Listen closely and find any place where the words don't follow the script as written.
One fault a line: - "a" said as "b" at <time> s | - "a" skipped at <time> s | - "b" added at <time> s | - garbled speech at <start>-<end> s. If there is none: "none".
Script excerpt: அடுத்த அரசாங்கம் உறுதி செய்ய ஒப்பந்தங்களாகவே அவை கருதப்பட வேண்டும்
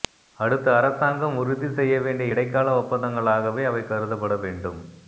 - "வேண்டிய இடைக்கால" added at 2.0 s